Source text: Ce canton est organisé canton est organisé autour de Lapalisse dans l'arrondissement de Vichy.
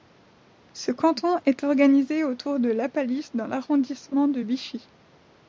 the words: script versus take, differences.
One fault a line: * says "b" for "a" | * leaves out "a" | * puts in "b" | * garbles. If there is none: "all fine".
* leaves out "canton est organisé"